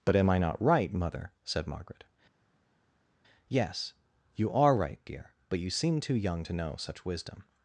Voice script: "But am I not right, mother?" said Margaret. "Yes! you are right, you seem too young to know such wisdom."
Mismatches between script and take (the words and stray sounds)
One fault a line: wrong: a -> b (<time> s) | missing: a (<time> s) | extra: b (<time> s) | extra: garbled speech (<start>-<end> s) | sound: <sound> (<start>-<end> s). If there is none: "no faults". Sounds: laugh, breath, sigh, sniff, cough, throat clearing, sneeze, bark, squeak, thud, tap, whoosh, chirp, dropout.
extra: dear but (5.1 s)